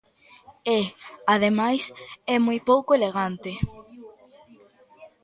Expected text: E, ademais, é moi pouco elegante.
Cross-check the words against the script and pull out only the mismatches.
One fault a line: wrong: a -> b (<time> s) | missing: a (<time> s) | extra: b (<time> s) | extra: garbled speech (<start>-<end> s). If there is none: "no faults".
no faults